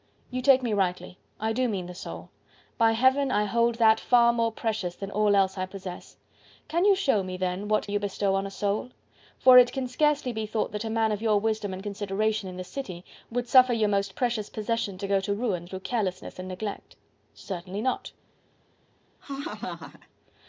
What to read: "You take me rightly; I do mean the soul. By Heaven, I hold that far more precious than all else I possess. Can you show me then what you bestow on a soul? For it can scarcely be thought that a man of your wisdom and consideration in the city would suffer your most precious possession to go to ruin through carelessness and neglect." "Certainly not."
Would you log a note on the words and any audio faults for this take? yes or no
yes